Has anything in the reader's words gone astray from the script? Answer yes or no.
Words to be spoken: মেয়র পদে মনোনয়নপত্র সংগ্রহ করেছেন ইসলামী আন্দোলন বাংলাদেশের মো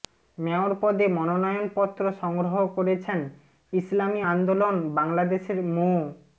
no